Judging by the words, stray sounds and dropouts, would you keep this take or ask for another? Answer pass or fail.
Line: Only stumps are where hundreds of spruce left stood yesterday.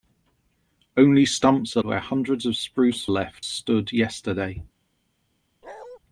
fail